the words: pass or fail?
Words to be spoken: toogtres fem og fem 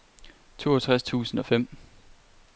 fail